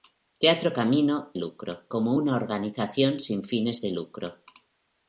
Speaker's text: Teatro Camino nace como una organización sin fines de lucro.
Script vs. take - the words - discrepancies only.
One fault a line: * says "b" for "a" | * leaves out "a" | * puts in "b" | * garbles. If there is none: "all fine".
* says "lucro" for "nace"